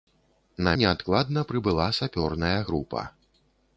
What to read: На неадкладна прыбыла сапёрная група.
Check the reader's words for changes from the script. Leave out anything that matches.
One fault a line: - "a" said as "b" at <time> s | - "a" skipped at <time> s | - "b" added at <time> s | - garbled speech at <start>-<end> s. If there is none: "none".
none